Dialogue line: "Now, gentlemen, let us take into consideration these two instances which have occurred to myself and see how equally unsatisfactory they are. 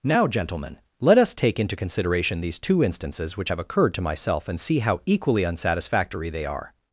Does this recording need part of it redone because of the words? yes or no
no